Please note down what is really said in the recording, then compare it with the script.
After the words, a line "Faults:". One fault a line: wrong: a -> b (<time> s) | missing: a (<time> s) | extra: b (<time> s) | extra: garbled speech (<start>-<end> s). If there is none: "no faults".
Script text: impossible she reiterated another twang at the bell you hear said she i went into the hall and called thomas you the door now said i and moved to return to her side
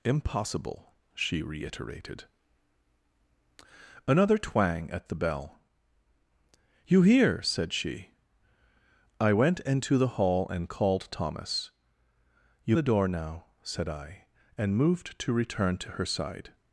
impossible she reiterated another twang at the bell you hear said she i went into the hall and called thomas you the door now said i and moved to return to her side
Faults:
no faults